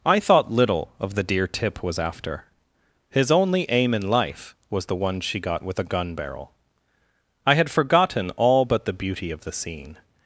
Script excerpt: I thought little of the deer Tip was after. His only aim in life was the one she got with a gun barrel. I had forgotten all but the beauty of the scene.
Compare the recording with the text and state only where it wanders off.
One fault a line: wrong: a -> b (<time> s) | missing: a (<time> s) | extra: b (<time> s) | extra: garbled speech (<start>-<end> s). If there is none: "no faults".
no faults